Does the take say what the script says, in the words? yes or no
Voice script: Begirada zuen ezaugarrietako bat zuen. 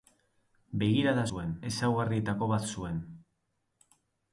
yes